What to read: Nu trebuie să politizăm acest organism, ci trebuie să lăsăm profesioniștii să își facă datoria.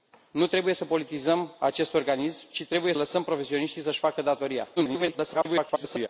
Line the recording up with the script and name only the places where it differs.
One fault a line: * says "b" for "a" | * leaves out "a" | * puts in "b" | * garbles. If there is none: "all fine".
* leaves out "să"
* garbles